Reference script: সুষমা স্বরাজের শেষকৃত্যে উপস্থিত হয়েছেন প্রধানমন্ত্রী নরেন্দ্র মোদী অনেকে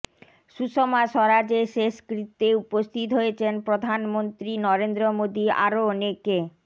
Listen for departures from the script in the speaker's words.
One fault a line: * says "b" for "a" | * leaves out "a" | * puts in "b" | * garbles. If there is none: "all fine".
* puts in "আরও"